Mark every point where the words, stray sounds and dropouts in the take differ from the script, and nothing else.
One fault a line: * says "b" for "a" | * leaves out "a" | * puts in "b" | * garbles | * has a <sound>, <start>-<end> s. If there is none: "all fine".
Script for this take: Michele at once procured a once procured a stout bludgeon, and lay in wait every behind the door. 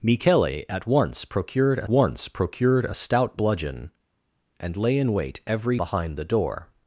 all fine